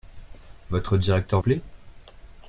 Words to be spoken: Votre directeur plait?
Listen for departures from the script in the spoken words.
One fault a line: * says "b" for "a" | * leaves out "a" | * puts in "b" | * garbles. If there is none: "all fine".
all fine